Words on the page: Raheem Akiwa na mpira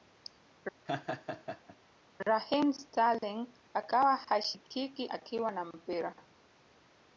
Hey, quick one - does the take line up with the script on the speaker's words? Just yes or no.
no